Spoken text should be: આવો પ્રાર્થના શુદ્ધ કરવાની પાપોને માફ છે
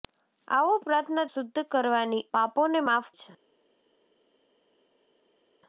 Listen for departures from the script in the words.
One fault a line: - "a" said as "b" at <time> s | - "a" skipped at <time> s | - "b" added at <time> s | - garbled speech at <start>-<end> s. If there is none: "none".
none